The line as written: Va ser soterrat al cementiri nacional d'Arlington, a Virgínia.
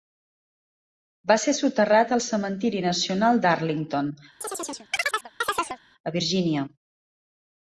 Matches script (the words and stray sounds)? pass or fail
fail